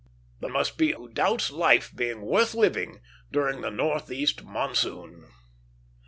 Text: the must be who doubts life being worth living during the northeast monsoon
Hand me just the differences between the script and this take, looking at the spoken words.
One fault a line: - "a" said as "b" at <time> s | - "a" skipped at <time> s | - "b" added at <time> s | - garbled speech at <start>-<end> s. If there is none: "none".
none